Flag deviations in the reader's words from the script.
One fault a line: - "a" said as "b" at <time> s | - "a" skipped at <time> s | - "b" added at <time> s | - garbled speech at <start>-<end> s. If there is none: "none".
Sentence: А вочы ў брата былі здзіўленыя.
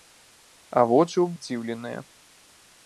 - "брата былі" skipped at 1.3 s